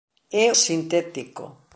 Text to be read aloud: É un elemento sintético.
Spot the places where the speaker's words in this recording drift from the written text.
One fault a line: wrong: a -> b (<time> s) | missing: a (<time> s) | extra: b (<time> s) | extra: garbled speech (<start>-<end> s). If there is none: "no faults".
missing: un elemento (0.5 s)